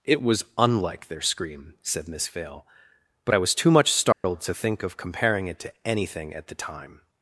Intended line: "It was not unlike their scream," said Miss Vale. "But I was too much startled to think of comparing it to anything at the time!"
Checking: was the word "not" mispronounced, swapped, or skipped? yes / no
yes